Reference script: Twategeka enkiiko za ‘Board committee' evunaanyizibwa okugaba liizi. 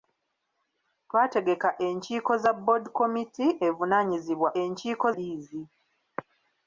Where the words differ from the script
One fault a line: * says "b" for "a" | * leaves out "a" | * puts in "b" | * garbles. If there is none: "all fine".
* says "enkiiko" for "okugaba"